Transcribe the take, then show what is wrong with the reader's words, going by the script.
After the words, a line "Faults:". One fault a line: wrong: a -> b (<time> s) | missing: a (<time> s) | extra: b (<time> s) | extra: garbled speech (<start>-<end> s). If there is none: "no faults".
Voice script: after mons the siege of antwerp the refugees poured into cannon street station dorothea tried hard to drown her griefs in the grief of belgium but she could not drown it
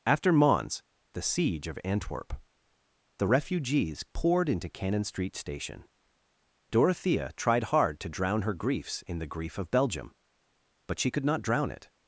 after mons the siege of antwerp the refugees poured into cannon street station dorothea tried hard to drown her griefs in the grief of belgium but she could not drown it
Faults:
no faults